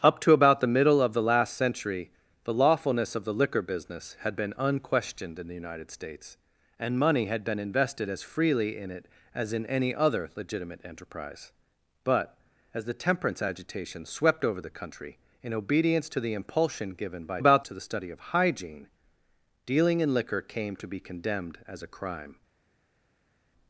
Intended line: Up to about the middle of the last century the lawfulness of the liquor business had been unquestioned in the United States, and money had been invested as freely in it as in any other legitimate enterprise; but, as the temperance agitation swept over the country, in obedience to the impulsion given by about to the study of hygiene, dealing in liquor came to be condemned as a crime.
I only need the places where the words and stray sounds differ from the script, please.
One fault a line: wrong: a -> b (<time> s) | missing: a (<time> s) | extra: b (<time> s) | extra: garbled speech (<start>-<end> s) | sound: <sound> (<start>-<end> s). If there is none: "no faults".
no faults